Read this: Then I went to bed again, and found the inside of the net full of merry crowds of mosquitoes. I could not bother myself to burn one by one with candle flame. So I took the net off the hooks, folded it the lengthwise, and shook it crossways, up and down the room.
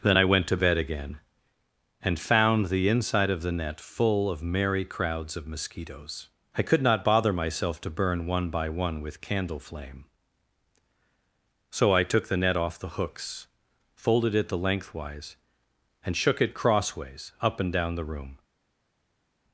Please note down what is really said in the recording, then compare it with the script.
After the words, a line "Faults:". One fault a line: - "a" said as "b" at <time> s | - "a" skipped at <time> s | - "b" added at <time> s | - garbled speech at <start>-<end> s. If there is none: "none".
Then I went to bed again, and found the inside of the net full of merry crowds of mosquitoes. I could not bother myself to burn one by one with candle flame. So I took the net off the hooks, folded it the lengthwise, and shook it crossways, up and down the room.
Faults:
none